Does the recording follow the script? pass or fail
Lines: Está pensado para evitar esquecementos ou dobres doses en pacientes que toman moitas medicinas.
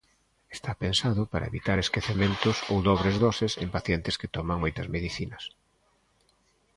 pass